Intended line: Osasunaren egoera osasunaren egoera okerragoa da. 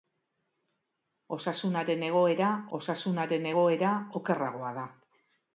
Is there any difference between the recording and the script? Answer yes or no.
no